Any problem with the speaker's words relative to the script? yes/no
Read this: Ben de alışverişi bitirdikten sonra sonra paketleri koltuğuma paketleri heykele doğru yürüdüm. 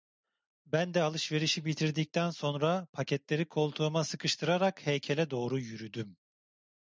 yes